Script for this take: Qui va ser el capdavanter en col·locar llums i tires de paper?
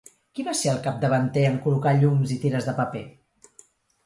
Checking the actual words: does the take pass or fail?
pass